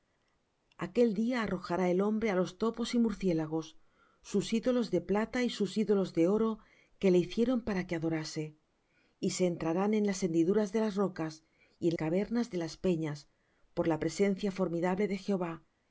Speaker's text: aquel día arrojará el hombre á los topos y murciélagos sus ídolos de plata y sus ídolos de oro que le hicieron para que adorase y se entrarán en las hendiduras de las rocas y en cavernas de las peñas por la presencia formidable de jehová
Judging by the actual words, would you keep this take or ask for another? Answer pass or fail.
pass